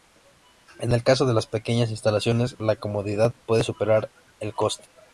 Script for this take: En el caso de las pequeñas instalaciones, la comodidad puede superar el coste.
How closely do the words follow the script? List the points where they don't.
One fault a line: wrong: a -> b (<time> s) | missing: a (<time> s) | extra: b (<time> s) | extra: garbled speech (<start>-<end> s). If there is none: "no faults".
no faults